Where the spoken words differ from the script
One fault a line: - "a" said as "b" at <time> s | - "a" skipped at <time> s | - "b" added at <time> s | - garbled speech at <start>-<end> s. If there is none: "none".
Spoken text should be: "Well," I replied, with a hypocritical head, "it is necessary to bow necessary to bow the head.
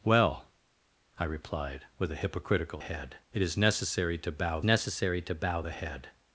none